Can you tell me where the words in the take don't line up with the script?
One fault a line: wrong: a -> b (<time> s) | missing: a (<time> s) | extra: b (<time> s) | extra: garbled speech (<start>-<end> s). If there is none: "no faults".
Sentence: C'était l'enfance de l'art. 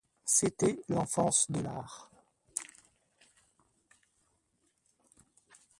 no faults